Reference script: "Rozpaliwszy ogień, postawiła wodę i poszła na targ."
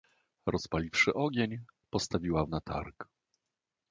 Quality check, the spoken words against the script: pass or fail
fail